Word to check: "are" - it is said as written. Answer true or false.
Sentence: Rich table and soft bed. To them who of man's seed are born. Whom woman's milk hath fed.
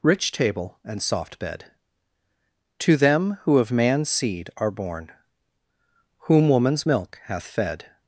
true